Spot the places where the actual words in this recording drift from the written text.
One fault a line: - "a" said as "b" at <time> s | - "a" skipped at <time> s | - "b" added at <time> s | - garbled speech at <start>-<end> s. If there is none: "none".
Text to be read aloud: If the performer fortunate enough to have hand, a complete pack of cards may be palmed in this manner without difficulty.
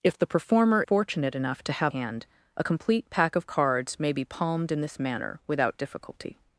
none